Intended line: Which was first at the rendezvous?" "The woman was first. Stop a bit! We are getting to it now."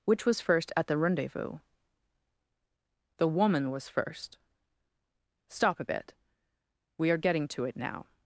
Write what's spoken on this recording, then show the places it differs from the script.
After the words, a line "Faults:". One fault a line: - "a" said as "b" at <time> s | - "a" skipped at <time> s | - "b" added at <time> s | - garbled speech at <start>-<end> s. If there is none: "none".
Which was first at the rendezvous?" "The woman was first. Stop a bit! We are getting to it now."
Faults:
none